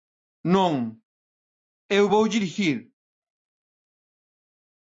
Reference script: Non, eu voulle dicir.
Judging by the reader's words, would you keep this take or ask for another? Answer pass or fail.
pass